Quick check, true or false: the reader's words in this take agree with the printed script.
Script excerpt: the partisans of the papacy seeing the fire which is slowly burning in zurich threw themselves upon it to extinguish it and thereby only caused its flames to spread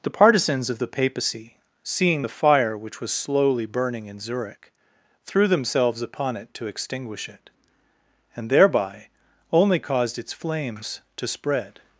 false